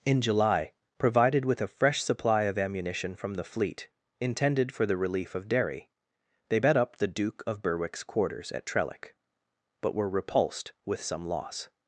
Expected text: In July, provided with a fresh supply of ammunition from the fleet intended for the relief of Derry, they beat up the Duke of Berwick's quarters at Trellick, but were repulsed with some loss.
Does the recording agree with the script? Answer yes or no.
no